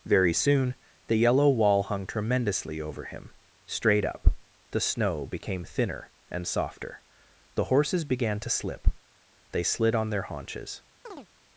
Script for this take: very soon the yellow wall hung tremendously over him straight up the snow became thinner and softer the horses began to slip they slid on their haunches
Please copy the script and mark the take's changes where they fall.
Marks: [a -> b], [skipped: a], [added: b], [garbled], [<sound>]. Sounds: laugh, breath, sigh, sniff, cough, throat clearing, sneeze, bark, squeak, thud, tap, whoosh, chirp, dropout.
very soon the yellow wall hung tremendously over him straight up the snow became thinner and softer the horses began to slip they slid on their haunches [chirp]